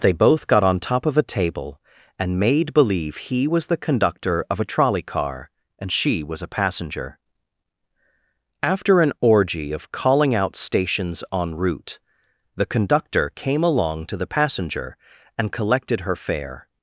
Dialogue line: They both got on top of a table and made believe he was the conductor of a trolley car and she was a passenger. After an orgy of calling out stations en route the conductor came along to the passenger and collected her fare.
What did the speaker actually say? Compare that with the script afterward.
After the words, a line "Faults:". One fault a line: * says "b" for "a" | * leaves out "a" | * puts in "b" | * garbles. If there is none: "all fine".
They both got on top of a table and made believe he was the conductor of a trolley car and she was a passenger. After an orgy of calling out stations en route the conductor came along to the passenger and collected her fare.
Faults:
all fine